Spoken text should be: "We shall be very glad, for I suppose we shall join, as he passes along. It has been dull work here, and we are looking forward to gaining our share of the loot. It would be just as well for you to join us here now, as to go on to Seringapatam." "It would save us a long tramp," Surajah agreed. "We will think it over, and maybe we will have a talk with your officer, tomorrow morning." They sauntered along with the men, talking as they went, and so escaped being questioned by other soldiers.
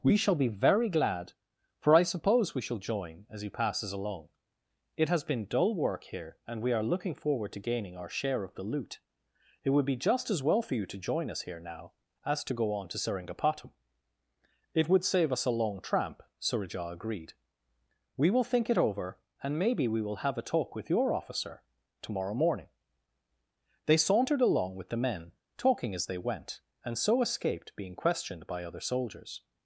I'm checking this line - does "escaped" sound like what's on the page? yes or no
yes